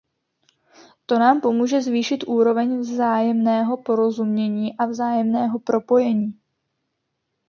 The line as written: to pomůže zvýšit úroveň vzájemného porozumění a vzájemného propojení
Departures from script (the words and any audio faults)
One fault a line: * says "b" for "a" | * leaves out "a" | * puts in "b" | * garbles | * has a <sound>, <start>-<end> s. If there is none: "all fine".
* puts in "nám"